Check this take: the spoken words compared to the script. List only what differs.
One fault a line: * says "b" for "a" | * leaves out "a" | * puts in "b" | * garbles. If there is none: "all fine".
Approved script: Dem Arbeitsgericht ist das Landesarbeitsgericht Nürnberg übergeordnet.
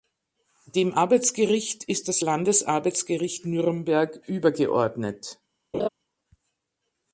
all fine